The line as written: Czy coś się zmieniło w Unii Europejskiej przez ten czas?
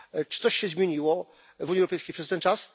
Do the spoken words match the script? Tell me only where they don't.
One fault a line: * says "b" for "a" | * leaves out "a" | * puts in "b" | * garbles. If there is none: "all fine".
all fine